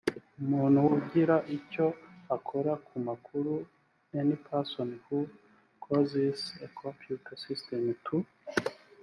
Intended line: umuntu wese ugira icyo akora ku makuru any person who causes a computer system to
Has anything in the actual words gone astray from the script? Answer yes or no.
yes